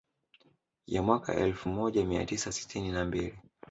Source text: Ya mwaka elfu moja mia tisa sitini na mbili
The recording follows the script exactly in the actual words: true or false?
true